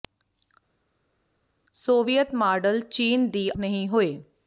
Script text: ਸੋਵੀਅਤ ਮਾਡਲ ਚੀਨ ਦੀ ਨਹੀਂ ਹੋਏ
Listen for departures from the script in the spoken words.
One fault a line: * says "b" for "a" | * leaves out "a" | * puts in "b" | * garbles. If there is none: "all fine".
all fine